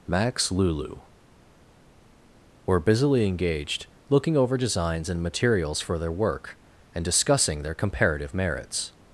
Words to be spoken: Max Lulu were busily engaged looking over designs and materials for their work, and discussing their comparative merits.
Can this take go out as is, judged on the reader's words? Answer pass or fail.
pass